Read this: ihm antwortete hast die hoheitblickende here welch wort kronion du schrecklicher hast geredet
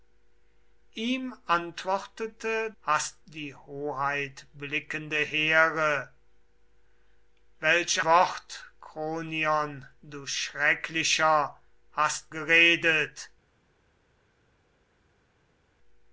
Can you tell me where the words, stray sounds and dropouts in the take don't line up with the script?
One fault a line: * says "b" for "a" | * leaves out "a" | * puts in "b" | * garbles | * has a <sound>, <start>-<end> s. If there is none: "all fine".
all fine